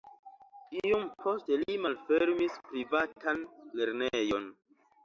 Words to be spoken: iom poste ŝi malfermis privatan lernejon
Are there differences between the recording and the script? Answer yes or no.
yes